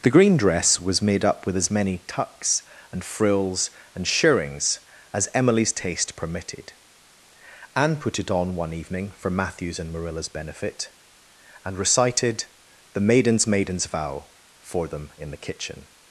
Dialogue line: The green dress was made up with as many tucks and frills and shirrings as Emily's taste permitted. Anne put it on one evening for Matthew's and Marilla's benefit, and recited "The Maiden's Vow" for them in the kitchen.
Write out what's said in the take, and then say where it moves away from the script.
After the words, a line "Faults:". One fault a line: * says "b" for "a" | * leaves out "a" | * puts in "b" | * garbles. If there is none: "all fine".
The green dress was made up with as many tucks and frills and shirrings as Emily's taste permitted. Anne put it on one evening for Matthew's and Marilla's benefit, and recited "The Maiden's Maiden's Vow" for them in the kitchen.
Faults:
* puts in "Maiden's"